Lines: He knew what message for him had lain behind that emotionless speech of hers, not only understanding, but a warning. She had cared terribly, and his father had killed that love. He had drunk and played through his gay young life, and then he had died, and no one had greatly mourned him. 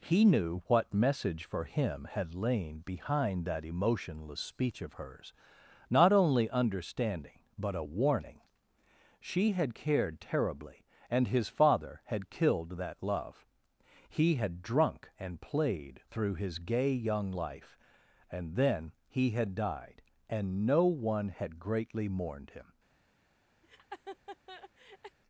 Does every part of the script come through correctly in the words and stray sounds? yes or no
no